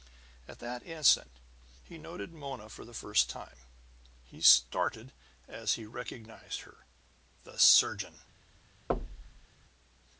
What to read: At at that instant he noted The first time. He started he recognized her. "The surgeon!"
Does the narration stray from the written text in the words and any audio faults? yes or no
yes